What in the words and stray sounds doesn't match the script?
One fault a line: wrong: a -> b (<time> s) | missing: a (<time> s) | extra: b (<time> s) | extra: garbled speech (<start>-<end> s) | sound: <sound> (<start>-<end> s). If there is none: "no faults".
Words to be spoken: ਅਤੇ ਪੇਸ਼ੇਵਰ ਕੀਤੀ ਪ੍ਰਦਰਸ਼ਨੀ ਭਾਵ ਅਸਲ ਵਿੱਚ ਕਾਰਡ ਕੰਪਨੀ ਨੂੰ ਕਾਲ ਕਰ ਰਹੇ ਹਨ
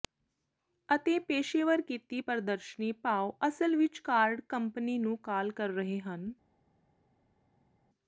no faults